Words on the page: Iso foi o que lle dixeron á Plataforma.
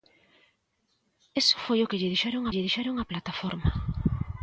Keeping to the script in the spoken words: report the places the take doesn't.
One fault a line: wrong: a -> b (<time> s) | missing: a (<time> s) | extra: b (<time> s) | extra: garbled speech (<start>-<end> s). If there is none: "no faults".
extra: lle dixeron (2.5 s)